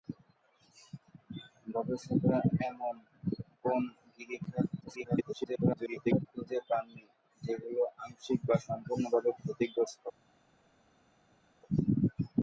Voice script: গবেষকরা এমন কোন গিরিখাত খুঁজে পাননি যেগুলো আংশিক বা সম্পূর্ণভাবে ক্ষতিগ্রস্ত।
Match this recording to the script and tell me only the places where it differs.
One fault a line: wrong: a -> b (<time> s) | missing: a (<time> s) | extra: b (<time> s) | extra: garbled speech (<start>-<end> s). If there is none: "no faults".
extra: garbled speech (4.8-6.3 s)